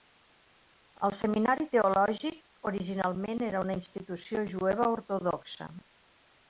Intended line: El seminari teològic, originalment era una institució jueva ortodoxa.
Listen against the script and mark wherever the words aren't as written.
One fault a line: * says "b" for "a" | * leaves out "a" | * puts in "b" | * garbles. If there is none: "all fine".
all fine